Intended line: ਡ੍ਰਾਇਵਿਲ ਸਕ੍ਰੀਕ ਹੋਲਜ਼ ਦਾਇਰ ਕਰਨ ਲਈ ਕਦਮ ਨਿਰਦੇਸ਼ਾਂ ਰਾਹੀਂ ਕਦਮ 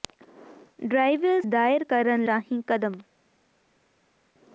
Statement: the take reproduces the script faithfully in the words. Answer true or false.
false